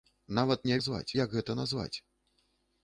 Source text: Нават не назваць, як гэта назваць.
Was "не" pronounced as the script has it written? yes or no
yes